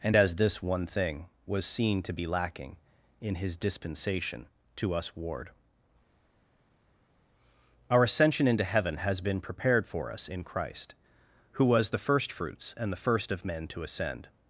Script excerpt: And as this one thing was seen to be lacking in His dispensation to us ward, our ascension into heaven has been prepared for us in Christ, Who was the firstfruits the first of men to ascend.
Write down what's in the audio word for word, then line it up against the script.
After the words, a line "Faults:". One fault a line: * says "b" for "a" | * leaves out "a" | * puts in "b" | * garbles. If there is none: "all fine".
And as this one thing was seen to be lacking in His dispensation to us ward, our ascension into heaven has been prepared for us in Christ, Who was the firstfruits and the first of men to ascend.
Faults:
* puts in "and"